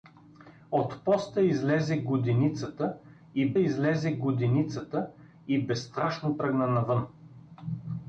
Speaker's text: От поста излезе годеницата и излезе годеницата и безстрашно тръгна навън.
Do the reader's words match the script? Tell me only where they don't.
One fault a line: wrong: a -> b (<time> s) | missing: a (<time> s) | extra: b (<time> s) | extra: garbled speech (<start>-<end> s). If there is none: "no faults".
no faults